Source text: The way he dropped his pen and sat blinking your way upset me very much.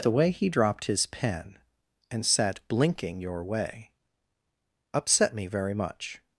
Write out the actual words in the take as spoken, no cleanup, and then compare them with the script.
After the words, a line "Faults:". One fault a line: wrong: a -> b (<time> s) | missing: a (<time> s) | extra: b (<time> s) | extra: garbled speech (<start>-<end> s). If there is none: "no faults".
The way he dropped his pen and sat blinking your way upset me very much.
Faults:
no faults